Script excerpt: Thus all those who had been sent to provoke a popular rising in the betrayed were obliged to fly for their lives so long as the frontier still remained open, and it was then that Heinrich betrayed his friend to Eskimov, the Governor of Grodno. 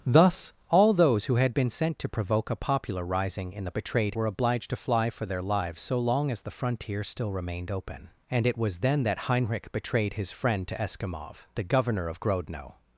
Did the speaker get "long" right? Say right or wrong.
right